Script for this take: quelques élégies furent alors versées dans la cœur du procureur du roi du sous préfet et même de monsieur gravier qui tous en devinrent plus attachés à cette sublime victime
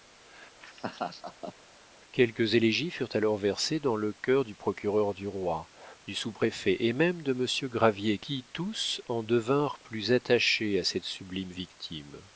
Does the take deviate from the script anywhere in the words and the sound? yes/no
yes